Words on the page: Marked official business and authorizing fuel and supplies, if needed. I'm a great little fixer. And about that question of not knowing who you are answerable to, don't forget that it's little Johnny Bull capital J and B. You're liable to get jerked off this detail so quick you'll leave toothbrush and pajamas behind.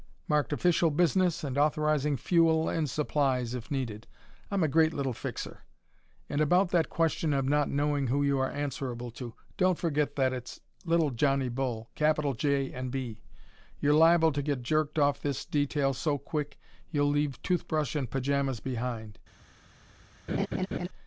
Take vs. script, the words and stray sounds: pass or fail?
fail